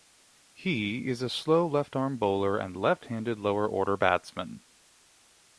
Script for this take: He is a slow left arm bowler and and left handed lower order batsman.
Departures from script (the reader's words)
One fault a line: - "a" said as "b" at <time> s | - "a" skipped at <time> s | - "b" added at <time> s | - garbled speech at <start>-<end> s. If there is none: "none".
- "and" skipped at 2.8 s